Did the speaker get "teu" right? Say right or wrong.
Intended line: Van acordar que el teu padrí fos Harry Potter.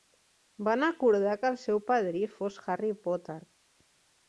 wrong